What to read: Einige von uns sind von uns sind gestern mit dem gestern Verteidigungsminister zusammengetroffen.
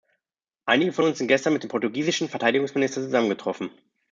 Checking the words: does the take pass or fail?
fail